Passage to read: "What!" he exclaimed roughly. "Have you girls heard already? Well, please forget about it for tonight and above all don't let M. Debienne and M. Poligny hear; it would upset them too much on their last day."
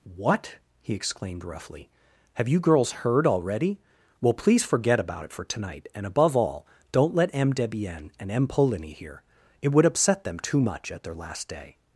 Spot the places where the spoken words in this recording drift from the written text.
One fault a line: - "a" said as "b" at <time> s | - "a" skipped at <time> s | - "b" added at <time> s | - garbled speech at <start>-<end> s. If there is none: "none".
- "on" said as "at" at 10.9 s